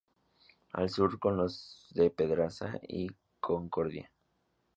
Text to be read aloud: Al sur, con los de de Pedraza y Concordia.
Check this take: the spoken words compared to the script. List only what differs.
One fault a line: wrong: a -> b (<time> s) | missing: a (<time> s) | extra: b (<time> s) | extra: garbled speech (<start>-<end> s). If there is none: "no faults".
missing: de (2.1 s)